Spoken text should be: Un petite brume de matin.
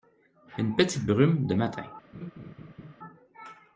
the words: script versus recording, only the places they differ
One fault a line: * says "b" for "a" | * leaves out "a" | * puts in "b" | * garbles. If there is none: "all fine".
* says "Une" for "Un"